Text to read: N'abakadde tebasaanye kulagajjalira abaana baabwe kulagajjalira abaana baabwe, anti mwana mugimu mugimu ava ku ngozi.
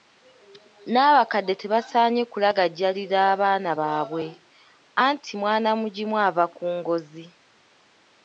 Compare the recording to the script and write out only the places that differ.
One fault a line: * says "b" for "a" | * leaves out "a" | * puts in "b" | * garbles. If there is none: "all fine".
* leaves out "kulagajjalira abaana baabwe"
* leaves out "mugimu"